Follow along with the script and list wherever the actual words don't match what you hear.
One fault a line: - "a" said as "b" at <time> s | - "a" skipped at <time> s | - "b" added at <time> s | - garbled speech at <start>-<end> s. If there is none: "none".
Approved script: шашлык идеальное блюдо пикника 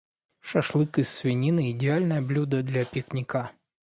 - "из свинины" added at 1.0 s
- "для" added at 2.6 s